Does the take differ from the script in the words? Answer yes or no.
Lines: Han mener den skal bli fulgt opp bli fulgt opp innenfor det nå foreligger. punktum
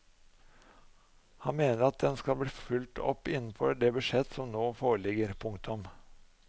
yes